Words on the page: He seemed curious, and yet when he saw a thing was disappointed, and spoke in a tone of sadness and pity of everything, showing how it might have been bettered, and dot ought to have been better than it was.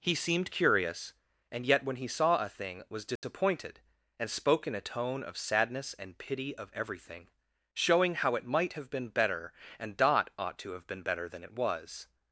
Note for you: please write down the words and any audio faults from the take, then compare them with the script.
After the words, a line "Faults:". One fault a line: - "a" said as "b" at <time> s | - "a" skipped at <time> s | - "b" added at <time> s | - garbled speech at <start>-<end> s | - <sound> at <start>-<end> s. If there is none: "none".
He seemed curious, and yet when he saw a thing was disappointed, and spoke in a tone of sadness and pity of everything, showing how it might have been better, and dot ought to have been better than it was.
Faults:
- dropout at 3.2-3.2 s
- "bettered" said as "better" at 9.1 s